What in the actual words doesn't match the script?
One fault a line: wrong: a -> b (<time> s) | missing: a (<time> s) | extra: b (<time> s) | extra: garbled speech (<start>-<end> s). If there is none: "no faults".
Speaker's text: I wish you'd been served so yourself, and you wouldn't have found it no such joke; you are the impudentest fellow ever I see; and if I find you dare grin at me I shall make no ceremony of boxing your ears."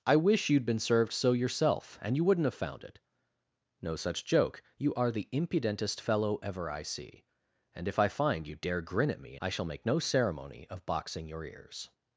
no faults